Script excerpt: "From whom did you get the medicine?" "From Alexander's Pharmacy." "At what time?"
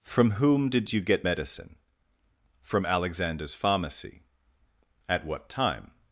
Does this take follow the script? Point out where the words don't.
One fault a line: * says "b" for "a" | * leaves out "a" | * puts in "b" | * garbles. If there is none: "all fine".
* leaves out "the"